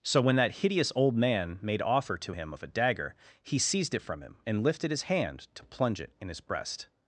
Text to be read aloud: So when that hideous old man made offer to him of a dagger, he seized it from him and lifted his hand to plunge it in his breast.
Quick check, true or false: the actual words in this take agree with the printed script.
true